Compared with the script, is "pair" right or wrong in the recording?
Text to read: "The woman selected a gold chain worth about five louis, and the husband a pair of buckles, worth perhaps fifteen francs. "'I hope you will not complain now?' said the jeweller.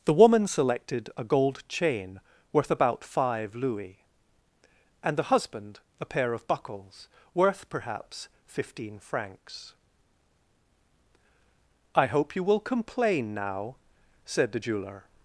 right